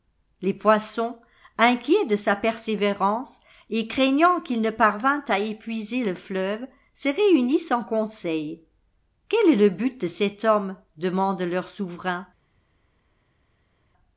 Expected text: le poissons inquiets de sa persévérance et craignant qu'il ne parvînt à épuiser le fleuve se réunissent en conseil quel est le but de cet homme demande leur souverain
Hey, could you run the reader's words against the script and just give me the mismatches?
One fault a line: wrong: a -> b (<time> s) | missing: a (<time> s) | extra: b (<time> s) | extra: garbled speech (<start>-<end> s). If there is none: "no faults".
wrong: le -> les (0.4 s)